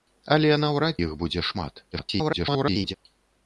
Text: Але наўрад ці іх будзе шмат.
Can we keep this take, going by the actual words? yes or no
no